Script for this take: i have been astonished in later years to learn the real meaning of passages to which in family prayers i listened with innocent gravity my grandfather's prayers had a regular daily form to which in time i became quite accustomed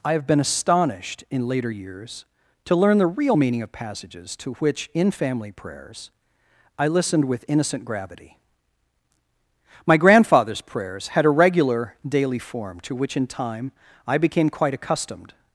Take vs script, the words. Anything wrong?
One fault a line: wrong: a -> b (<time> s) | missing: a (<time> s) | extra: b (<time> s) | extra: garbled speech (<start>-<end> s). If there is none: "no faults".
no faults